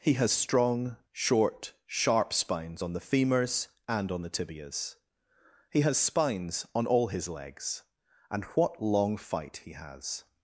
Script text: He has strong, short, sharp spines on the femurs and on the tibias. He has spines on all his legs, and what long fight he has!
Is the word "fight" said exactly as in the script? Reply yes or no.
yes